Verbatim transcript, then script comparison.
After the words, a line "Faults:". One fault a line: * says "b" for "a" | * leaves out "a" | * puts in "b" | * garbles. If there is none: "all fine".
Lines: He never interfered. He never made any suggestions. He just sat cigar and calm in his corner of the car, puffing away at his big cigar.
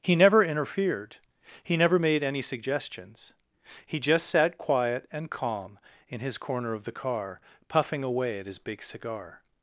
He never interfered. He never made any suggestions. He just sat quiet and calm in his corner of the car, puffing away at his big cigar.
Faults:
* says "quiet" for "cigar"